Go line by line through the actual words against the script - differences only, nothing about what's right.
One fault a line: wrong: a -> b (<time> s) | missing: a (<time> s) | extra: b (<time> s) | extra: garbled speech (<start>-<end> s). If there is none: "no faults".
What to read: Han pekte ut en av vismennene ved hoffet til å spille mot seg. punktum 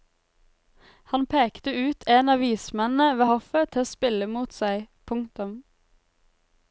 no faults